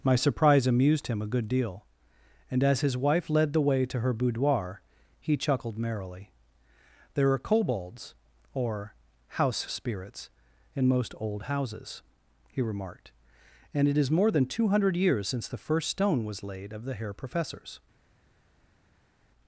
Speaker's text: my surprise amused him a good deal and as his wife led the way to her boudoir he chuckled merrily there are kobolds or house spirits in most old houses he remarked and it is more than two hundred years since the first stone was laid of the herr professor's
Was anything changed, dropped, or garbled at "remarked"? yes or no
no